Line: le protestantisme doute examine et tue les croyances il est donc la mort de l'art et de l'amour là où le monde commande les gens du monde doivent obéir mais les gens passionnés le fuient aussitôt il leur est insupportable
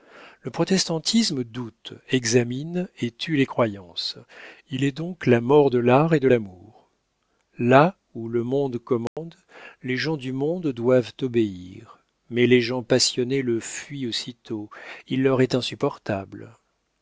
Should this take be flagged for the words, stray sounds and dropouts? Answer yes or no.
yes